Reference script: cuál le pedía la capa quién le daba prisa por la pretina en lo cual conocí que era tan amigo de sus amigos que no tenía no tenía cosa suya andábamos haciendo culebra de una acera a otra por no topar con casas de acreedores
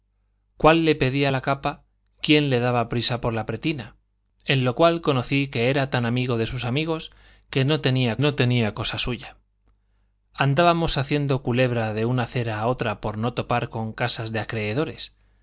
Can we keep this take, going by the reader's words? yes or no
yes